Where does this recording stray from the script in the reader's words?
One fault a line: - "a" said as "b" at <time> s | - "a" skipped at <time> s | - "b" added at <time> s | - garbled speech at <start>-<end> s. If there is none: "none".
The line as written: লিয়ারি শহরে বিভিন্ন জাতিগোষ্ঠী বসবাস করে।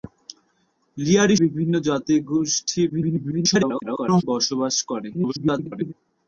- "শহরে" skipped at 1.4 s
- garbled speech at 2.9-4.2 s
- garbled speech at 5.1-5.9 s